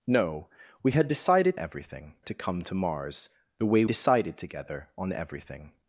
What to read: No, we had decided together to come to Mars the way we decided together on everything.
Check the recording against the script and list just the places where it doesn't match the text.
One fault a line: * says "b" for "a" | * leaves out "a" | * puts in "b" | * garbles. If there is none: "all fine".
* says "everything" for "together"
* leaves out "we"